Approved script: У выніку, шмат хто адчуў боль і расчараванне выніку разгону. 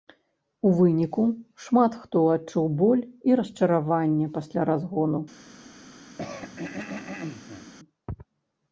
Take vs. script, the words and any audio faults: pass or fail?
fail